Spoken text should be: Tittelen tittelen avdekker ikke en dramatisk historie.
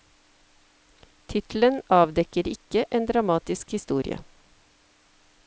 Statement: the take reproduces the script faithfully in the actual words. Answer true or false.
false